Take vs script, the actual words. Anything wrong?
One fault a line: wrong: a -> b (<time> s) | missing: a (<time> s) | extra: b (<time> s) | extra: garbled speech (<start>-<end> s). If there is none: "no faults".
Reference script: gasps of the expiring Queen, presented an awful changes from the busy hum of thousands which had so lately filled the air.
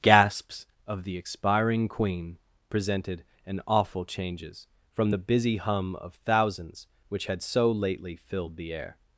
no faults